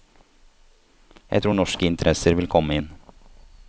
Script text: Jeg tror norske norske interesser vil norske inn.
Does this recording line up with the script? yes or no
no